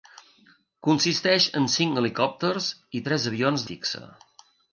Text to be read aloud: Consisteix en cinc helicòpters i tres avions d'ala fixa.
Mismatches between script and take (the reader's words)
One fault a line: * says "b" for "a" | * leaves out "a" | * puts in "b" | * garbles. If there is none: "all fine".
* leaves out "d'ala"